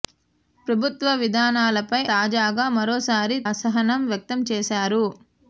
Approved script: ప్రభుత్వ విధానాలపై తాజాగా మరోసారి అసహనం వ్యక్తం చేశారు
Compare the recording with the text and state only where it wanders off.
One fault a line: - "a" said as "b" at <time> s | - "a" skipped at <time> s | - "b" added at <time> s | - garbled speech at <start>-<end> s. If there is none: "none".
none